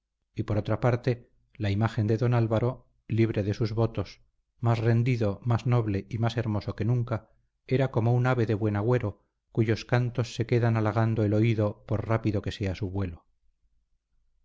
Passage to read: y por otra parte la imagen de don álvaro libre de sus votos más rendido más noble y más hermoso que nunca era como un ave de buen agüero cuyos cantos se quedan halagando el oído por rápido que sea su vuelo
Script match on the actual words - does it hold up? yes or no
yes